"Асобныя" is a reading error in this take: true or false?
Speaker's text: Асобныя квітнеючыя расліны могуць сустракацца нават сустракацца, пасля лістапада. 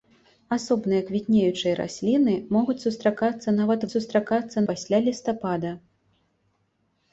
false